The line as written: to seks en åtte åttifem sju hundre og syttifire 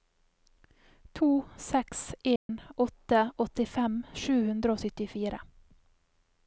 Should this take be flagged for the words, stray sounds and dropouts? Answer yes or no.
yes